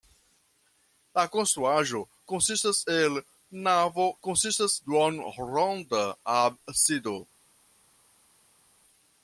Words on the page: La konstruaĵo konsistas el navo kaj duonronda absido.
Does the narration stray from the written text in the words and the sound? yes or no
yes